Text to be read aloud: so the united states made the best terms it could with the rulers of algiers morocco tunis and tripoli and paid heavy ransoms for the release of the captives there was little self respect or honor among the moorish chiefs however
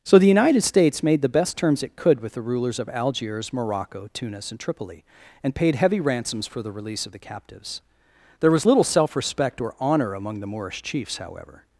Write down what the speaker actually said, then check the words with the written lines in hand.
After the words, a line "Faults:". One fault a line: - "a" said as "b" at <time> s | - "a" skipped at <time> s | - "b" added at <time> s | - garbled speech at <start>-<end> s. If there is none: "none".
so the united states made the best terms it could with the rulers of algiers morocco tunis and tripoli and paid heavy ransoms for the release of the captives there was little self respect or honor among the moorish chiefs however
Faults:
none